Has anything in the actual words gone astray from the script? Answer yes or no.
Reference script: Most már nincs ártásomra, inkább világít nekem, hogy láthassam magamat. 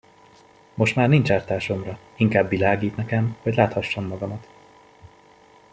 no